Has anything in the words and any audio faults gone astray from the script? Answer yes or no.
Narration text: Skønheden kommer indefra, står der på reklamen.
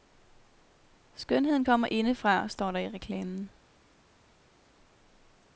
yes